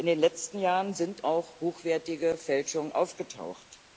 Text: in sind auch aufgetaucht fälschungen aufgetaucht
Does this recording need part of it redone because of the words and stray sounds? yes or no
yes